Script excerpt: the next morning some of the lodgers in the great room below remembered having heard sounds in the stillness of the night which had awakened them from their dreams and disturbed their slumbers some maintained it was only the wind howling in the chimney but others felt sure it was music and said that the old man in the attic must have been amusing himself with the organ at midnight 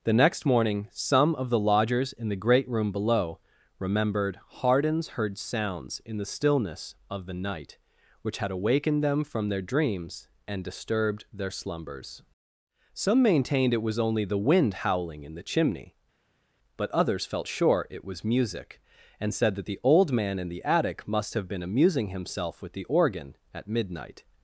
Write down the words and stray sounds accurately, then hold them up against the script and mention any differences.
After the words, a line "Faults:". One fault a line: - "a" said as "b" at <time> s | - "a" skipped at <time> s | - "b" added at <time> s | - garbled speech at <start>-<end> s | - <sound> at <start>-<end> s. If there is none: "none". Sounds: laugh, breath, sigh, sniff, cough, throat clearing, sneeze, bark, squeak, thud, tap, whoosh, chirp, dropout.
the next morning some of the lodgers in the great room below remembered hardens heard sounds in the stillness of the night which had awakened them from their dreams and disturbed their slumbers some maintained it was only the wind howling in the chimney but others felt sure it was music and said that the old man in the attic must have been amusing himself with the organ at midnight
Faults:
- "having" said as "hardens" at 4.5 s